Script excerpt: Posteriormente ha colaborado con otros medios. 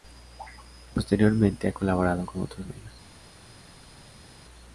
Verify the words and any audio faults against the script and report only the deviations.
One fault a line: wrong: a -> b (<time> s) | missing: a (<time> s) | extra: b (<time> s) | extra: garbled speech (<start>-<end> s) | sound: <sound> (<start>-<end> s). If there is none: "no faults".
no faults